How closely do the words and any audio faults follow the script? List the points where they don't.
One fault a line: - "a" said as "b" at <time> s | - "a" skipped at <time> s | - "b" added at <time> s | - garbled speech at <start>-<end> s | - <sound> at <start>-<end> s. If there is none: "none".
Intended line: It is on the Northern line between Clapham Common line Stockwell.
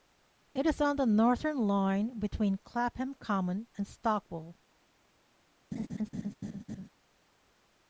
- "line" said as "and" at 3.8 s
- laugh at 5.7-6.9 s